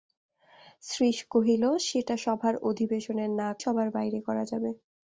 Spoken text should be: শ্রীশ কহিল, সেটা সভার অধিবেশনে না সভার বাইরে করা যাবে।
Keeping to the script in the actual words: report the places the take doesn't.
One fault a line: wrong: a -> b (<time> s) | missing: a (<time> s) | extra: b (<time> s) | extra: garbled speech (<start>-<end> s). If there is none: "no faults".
no faults